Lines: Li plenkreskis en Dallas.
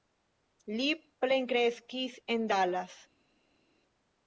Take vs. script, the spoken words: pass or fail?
pass